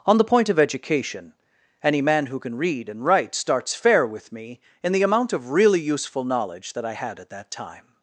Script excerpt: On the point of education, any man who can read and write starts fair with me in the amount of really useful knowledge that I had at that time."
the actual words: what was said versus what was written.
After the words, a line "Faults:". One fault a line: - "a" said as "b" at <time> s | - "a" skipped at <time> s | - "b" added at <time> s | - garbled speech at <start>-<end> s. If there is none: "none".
On the point of education, any man who can read and write starts fair with me in the amount of really useful knowledge that I had at that time."
Faults:
none